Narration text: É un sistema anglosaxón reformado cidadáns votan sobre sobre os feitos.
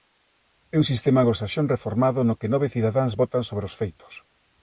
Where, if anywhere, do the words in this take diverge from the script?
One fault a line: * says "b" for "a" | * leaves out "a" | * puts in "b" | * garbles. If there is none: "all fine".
* puts in "no que nove"
* leaves out "sobre"